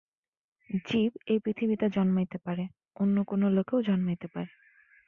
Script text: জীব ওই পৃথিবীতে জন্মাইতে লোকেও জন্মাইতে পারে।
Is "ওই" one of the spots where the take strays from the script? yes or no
yes